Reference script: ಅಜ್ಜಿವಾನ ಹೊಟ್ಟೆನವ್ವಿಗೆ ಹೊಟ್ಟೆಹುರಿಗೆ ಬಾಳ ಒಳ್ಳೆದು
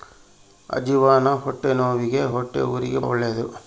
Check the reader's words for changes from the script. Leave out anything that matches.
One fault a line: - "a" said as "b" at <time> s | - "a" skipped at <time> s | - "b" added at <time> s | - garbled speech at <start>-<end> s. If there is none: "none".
- "ಬಾಳ" skipped at 3.0 s